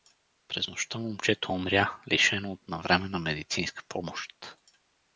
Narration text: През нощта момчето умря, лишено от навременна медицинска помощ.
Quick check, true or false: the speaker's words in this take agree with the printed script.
true